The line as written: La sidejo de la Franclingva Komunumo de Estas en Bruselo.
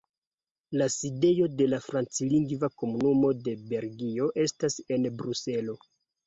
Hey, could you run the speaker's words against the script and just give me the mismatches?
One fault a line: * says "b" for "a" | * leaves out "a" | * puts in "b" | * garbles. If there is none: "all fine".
* puts in "Belgio"